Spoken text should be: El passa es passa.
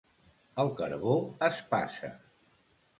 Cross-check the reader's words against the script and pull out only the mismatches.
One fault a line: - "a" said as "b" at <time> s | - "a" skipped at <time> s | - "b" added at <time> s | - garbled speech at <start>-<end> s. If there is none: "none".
- "passa" said as "carbó" at 0.8 s